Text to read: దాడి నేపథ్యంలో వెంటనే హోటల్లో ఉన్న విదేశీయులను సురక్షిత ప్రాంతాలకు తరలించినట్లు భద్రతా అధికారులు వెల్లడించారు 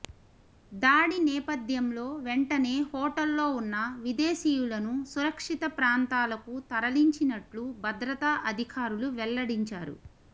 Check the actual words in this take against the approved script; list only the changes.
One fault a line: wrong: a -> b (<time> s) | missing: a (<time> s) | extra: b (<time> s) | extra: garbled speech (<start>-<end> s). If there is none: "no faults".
no faults